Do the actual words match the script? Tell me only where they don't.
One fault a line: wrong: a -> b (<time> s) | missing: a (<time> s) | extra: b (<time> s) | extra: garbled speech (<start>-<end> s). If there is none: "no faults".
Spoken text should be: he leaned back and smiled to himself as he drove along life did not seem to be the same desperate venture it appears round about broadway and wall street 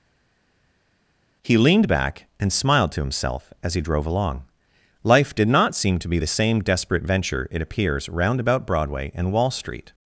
no faults